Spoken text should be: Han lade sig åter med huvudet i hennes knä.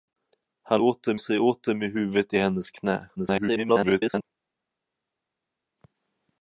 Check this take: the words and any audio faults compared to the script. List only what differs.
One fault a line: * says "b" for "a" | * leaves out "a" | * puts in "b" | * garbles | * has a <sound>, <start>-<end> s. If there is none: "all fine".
* says "åter" for "lade"
* garbles